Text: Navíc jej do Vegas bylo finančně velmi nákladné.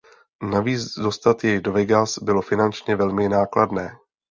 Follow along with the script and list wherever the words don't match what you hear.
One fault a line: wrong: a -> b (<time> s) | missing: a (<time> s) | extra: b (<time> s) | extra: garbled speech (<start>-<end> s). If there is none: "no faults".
extra: dostat (1.0 s)